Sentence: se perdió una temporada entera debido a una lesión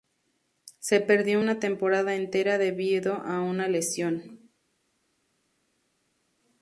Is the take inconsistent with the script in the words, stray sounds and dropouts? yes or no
no